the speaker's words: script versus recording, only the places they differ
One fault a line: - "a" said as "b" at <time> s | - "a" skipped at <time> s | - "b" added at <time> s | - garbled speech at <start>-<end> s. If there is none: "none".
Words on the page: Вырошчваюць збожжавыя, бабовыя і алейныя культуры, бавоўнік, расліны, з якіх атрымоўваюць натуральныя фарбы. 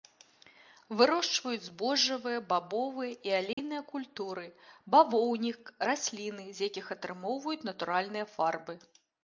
none